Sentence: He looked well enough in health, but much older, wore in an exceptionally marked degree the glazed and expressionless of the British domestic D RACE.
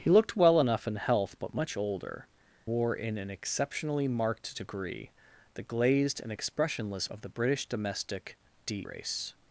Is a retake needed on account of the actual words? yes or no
no